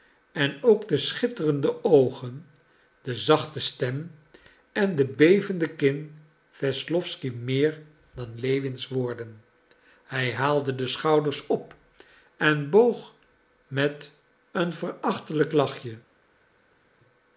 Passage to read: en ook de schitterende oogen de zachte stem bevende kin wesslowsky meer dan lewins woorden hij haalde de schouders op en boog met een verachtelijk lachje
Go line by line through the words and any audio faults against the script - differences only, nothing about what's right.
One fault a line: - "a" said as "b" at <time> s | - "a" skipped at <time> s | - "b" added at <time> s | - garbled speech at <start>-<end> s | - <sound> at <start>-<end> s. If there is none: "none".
- "en de" added at 4.7 s